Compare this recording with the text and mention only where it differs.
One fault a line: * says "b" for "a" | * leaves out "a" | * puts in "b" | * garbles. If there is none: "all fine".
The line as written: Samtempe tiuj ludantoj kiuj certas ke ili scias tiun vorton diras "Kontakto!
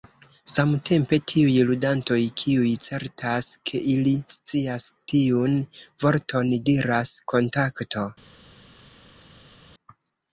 all fine